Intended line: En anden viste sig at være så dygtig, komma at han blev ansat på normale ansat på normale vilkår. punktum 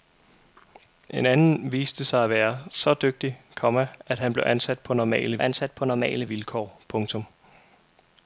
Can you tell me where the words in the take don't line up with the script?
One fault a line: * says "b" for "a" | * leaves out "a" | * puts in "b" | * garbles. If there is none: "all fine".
all fine